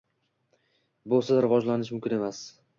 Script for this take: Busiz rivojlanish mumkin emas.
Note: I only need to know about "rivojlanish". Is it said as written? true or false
true